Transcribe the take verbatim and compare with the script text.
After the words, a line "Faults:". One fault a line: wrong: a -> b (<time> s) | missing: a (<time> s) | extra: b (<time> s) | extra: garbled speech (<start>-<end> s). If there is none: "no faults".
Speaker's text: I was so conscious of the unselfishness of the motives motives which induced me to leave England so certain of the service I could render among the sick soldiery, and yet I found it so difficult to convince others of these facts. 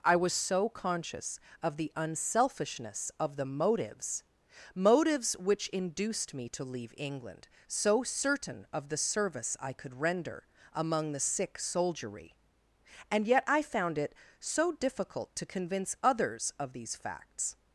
I was so conscious of the unselfishness of the motives motives which induced me to leave England so certain of the service I could render among the sick soldiery, and yet I found it so difficult to convince others of these facts.
Faults:
no faults